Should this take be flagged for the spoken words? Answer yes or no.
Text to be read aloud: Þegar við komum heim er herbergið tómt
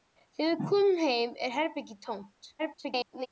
yes